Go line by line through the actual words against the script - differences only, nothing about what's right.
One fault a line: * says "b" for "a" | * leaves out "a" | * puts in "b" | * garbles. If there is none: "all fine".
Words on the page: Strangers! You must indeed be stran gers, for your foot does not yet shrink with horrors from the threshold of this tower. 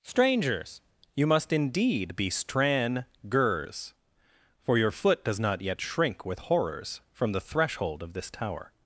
all fine